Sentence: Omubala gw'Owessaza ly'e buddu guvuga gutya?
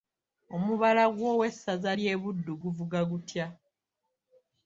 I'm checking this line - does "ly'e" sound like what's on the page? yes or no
yes